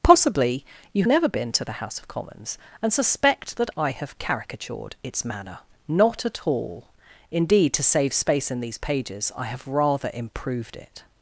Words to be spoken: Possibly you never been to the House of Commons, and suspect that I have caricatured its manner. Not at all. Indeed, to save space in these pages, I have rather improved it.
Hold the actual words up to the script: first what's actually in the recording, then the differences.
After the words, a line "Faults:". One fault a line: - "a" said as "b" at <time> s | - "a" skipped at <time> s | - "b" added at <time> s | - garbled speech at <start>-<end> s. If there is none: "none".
Possibly you never been to the House of Commons, and suspect that I have caricatured its manner. Not at all. Indeed, to save space in these pages, I have rather improved it.
Faults:
none